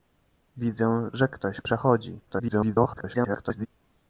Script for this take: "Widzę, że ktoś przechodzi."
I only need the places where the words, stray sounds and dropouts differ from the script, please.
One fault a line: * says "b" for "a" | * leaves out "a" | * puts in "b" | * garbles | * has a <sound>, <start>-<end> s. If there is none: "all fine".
* garbles